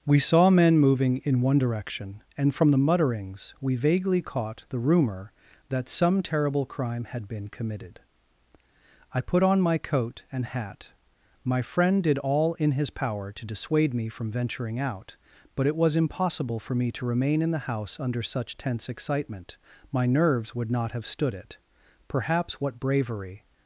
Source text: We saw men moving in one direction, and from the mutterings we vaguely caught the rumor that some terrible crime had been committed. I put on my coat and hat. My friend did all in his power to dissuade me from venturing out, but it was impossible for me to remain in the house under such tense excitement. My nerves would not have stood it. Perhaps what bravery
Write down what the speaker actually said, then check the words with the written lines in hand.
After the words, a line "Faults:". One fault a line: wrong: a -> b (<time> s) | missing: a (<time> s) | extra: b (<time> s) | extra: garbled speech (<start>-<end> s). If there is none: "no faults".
We saw men moving in one direction, and from the mutterings we vaguely caught the rumor that some terrible crime had been committed. I put on my coat and hat. My friend did all in his power to dissuade me from venturing out, but it was impossible for me to remain in the house under such tense excitement. My nerves would not have stood it. Perhaps what bravery
Faults:
no faults